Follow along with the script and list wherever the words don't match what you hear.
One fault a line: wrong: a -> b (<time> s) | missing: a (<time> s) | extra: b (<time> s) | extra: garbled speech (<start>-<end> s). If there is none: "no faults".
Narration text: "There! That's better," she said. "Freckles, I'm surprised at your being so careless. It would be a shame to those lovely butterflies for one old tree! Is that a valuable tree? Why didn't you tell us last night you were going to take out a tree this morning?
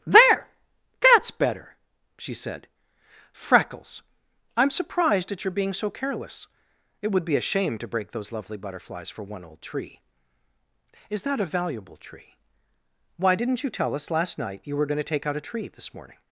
extra: break (7.9 s)